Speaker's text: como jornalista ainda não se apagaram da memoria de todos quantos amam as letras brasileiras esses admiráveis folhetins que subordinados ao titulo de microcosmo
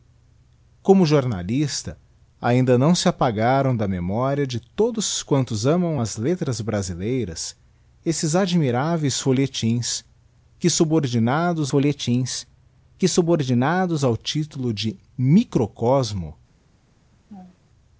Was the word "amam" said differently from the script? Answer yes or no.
no